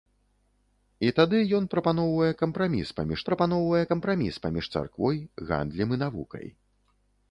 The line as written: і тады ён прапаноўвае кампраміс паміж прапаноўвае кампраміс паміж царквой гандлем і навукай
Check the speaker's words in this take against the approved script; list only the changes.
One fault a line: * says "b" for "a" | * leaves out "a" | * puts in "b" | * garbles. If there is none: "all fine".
all fine